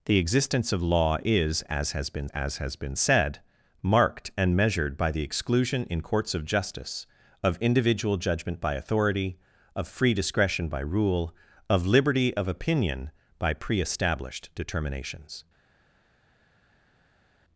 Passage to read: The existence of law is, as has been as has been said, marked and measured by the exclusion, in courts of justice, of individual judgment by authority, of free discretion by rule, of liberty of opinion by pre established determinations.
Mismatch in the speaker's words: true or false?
false